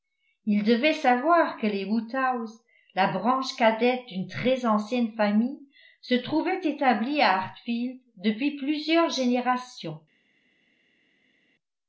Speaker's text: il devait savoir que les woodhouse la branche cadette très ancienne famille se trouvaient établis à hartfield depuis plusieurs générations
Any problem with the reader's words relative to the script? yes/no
yes